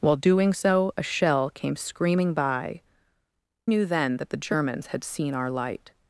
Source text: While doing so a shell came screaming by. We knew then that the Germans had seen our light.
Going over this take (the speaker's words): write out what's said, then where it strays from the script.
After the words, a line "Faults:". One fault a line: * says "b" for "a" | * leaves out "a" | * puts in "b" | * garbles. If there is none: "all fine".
While doing so a shell came screaming by. Knew then that the Germans had seen our light.
Faults:
* leaves out "We"